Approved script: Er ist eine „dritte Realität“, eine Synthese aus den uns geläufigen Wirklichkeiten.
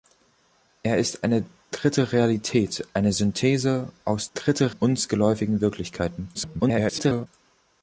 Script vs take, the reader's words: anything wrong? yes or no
yes